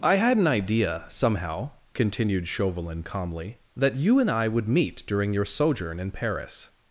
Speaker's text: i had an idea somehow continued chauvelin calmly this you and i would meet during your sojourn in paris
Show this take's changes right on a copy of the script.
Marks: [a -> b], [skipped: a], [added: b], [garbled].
i had an idea somehow continued chauvelin calmly [this -> that] you and i would meet during your sojourn in paris